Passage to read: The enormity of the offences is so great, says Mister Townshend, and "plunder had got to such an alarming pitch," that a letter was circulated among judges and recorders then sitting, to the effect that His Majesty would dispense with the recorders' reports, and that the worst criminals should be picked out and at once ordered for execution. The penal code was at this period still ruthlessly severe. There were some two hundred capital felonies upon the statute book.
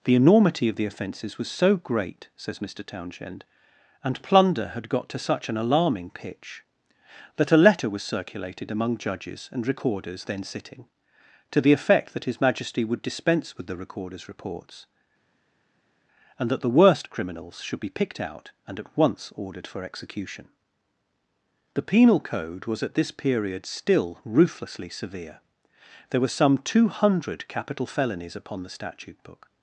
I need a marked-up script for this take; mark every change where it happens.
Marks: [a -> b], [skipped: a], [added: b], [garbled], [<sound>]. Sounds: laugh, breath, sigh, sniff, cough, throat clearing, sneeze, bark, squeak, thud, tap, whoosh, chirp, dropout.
The enormity of the offences [is -> was] so great, says Mister Townshend, and "plunder had got to such an alarming pitch," that a letter was circulated among judges and recorders then sitting, to the effect that His Majesty would dispense with the recorders' reports, and that the worst criminals should be picked out and at once ordered for execution. The penal code was at this period still ruthlessly severe. There were some two hundred capital felonies upon the statute book.